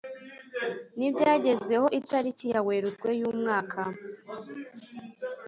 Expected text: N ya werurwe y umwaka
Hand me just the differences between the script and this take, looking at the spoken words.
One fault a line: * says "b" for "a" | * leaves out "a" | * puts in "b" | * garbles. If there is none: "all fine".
* puts in "ibyagezweho itariki"